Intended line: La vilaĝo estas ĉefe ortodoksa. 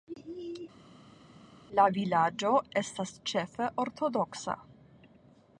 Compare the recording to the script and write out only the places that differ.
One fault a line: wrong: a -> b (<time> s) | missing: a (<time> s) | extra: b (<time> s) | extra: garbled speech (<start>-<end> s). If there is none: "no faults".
no faults